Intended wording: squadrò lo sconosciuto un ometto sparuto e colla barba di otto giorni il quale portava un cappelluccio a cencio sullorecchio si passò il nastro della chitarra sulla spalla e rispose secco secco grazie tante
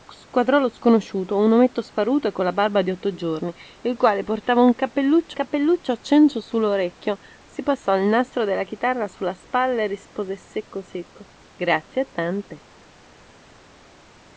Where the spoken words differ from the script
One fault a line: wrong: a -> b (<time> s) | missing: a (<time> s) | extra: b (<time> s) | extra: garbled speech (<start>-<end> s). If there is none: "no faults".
extra: cappelluccio (5.3 s)